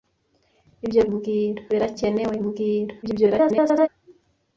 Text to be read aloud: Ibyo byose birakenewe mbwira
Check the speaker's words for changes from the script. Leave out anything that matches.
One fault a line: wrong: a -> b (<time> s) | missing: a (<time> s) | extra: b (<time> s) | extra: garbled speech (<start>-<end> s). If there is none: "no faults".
wrong: byose -> mbwira (1.1 s)
extra: garbled speech (3.0-3.9 s)